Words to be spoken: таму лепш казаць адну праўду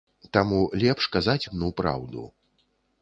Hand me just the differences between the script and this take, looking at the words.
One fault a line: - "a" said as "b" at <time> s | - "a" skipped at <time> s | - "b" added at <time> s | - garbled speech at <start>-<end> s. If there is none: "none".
none